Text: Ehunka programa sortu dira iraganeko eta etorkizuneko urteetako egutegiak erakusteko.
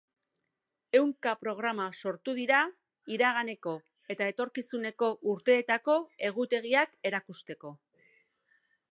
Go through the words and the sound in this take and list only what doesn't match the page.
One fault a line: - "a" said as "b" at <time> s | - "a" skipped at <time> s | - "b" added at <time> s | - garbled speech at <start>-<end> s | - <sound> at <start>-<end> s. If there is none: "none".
none